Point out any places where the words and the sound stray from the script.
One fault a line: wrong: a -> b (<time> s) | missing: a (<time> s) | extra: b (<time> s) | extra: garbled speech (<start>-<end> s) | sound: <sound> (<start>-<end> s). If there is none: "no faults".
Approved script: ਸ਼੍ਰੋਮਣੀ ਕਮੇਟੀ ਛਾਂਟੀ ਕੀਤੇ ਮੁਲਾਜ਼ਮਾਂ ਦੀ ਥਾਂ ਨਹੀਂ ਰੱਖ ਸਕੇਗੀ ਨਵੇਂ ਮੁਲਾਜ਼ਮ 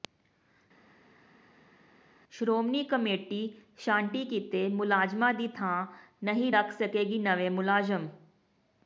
no faults